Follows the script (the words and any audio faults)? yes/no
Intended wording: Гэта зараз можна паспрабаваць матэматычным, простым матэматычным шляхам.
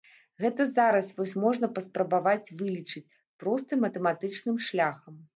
no